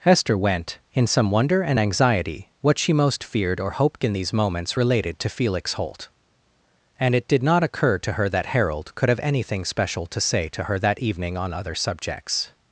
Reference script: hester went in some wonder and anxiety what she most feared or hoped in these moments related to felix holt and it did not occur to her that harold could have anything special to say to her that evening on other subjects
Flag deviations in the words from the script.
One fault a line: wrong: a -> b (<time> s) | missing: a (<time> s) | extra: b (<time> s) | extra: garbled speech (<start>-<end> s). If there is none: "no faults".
no faults